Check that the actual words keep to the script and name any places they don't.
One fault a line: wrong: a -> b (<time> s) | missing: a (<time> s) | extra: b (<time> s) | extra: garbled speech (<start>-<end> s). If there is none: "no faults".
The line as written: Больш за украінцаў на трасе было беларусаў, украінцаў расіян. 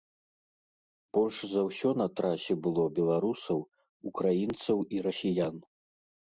wrong: украінцаў -> ўсё (1.7 s)
extra: і (5.0 s)